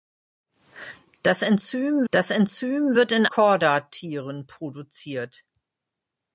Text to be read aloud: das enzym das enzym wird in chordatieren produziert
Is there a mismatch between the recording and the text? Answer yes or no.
no